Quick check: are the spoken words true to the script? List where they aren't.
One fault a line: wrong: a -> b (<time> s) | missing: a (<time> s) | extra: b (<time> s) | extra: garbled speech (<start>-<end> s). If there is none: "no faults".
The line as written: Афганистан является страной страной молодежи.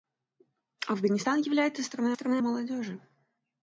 no faults